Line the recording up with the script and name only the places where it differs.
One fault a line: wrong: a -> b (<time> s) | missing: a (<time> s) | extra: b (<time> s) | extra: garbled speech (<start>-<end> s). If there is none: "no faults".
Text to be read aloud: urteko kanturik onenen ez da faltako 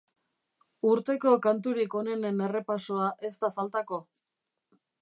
extra: errepasoa (2.5 s)